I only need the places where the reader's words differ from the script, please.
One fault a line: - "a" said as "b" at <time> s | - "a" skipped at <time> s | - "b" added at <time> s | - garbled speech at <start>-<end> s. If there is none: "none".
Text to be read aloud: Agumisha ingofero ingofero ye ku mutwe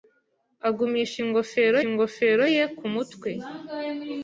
none